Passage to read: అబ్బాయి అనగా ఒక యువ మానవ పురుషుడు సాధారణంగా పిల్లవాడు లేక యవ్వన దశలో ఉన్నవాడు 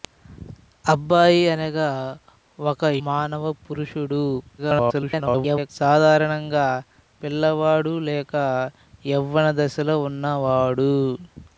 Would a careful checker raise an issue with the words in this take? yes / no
yes